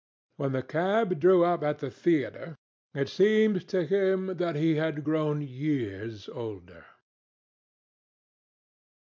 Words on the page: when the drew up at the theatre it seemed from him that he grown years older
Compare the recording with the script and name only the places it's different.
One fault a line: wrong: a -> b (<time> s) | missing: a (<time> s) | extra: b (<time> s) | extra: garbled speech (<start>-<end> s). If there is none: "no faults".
extra: cab (0.6 s)
wrong: from -> to (3.7 s)
extra: had (4.8 s)